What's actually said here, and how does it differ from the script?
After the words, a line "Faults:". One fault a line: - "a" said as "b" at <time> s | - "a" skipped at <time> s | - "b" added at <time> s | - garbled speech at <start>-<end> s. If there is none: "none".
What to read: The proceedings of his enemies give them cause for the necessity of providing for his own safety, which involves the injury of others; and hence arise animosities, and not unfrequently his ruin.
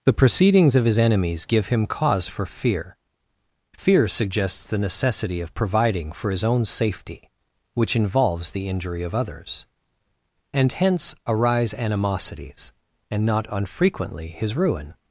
The proceedings of his enemies give him cause for fear; fear suggests the necessity of providing for his own safety, which involves the injury of others; and hence arise animosities, and not unfrequently his ruin.
Faults:
- "them" said as "him" at 1.7 s
- "fear fear suggests" added at 2.5 s